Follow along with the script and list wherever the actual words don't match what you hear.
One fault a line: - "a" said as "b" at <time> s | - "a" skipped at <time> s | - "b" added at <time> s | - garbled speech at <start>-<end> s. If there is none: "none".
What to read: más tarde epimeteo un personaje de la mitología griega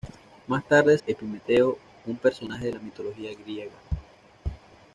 none